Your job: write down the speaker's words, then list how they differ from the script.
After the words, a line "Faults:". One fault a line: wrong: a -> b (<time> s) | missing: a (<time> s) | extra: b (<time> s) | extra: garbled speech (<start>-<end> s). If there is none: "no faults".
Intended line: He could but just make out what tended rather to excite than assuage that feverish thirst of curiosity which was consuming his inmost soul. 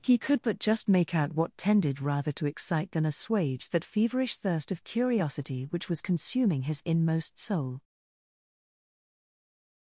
He could but just make out what tended rather to excite than assuage that feverish thirst of curiosity which was consuming his inmost soul.
Faults:
no faults